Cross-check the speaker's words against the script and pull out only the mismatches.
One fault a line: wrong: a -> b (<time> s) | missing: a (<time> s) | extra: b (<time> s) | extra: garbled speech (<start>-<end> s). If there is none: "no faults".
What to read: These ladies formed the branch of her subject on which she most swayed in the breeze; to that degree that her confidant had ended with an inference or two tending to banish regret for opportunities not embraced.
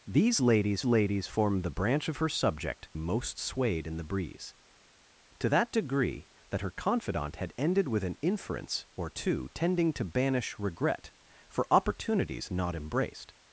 extra: ladies (0.9 s)
missing: on which she (2.9 s)